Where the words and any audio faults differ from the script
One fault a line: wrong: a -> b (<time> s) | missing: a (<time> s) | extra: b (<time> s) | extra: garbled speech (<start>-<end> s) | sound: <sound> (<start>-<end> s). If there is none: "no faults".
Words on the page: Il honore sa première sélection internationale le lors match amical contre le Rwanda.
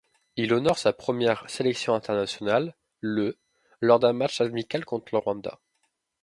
extra: d'un (4.0 s)